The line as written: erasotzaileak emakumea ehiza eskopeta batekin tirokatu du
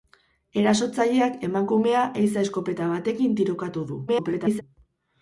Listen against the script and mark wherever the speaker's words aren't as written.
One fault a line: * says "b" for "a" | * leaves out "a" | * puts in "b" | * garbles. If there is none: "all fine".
* garbles